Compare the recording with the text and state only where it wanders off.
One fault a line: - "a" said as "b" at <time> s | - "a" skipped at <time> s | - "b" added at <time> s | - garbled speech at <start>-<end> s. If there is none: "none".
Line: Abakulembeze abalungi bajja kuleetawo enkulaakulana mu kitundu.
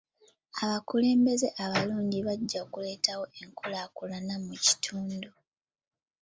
none